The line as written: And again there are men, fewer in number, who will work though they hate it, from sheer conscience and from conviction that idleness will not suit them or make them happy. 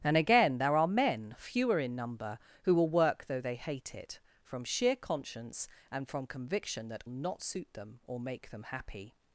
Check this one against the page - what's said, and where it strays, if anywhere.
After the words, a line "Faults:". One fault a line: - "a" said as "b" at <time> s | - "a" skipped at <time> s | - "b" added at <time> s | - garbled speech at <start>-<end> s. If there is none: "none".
And again there are men, fewer in number, who will work though they hate it, from sheer conscience and from conviction that not suit them or make them happy.
Faults:
- "idleness will" skipped at 7.0 s